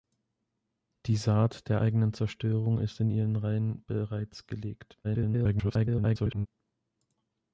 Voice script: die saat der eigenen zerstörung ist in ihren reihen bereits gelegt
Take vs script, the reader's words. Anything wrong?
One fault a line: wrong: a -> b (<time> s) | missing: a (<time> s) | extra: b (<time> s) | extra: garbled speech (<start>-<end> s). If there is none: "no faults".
extra: garbled speech (5.0-6.5 s)